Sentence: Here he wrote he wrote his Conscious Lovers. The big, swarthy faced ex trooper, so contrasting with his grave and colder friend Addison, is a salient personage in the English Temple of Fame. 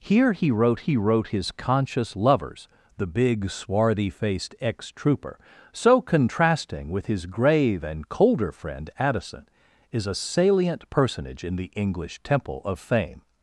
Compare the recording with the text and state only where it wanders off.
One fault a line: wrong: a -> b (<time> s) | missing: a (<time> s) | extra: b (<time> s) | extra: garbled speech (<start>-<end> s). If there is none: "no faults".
no faults